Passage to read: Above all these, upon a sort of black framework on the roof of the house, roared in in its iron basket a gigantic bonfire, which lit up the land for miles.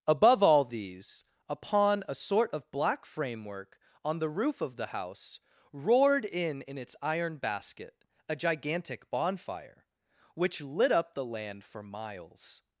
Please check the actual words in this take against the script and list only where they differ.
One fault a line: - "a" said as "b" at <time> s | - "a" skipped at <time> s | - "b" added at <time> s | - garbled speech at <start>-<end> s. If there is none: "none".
none